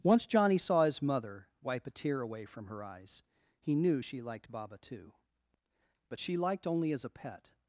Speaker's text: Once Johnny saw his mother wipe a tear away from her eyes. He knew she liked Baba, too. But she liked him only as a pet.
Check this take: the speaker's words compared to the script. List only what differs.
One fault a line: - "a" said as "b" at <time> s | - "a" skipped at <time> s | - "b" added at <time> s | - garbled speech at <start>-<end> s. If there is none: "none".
- "him" skipped at 6.7 s